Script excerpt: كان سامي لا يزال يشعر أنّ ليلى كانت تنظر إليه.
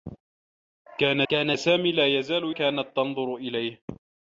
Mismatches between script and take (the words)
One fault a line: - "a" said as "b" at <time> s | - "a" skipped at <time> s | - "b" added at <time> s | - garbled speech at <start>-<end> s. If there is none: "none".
- "كان" added at 1.3 s
- "يشعر أنّ ليلى" skipped at 2.6 s